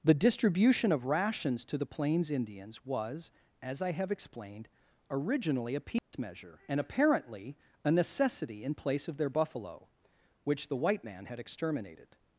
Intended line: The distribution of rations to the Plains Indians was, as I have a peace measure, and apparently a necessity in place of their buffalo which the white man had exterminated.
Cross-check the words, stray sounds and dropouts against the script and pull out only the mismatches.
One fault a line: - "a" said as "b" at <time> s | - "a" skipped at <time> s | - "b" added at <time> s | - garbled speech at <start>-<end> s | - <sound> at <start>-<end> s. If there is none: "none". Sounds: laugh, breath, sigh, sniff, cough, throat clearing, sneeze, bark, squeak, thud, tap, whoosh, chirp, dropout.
- "explained originally" added at 4.1 s
- dropout at 6.0-6.1 s